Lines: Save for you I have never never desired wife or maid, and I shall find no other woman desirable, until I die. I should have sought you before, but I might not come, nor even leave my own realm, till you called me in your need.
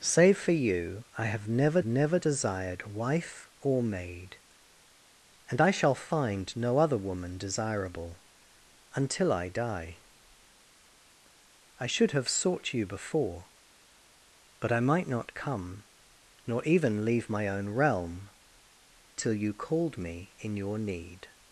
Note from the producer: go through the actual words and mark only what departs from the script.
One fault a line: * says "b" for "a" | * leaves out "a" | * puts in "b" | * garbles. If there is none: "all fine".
all fine